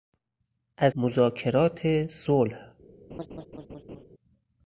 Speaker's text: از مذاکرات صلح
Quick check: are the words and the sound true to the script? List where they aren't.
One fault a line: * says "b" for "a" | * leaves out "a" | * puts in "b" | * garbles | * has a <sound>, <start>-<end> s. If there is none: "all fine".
* has a laugh, 3.1-4.0 s